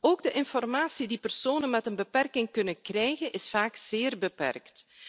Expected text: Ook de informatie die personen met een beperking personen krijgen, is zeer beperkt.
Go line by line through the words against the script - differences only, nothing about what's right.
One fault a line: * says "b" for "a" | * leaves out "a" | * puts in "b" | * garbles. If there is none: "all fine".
* says "kunnen" for "personen"
* puts in "vaak"